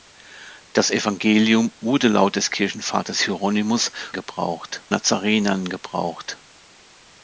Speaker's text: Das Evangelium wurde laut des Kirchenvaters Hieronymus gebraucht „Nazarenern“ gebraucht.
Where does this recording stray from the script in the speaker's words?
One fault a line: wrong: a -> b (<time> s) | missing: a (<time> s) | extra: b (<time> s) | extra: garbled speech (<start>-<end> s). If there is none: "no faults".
no faults